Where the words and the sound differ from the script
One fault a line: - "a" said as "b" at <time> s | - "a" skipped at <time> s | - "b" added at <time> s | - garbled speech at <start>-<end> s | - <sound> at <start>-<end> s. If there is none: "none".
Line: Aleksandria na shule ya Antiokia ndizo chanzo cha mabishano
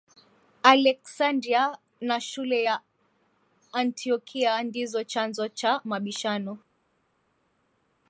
none